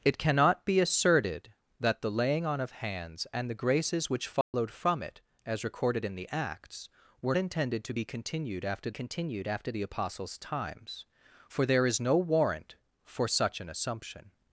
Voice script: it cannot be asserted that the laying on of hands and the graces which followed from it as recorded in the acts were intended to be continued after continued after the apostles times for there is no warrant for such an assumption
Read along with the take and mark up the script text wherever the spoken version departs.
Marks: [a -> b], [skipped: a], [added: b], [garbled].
it cannot be asserted that the laying on of hands and the graces which followed from it as recorded in the acts were intended to be continued after continued after the apostles times for there is no warrant for such an assumption